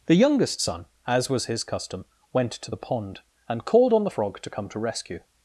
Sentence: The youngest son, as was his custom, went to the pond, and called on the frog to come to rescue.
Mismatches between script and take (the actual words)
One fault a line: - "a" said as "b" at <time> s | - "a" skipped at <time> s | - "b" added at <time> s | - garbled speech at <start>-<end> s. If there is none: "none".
none